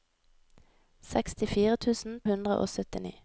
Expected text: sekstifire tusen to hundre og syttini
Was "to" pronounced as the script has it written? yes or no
no